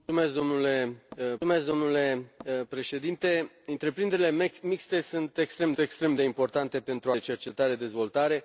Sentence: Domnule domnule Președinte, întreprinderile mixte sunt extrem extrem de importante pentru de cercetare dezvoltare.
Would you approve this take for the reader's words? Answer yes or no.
yes